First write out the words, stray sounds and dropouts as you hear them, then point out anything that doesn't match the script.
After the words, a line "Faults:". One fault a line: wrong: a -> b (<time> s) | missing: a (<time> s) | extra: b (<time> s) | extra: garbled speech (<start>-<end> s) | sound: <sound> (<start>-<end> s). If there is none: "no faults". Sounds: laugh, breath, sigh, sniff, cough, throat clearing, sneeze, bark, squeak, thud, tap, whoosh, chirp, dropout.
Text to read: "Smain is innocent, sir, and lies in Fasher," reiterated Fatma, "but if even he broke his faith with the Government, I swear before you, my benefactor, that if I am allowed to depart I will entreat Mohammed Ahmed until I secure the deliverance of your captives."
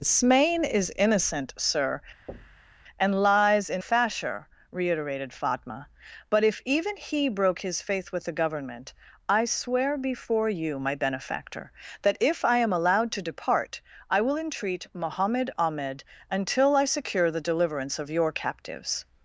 "Smain is innocent, sir, and lies in Fasher," reiterated Fatma, "but if even he broke his faith with the Government, I swear before you, my benefactor, that if I am allowed to depart I will entreat Mohammed Ahmed until I secure the deliverance of your captives."
Faults:
sound: thud (2.3-2.8 s)